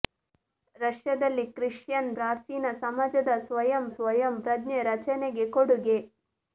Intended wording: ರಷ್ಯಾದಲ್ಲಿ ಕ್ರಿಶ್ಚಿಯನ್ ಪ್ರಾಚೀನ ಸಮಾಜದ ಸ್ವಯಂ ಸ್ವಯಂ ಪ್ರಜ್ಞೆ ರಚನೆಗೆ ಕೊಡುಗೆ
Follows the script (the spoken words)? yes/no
yes